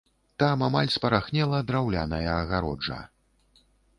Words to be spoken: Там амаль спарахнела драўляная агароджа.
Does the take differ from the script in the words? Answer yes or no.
no